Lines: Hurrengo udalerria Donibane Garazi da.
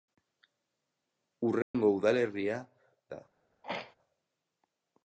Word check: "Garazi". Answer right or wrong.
wrong